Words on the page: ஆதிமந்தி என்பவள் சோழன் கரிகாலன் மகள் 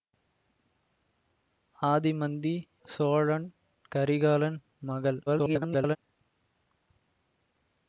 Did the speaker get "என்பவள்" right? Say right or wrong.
wrong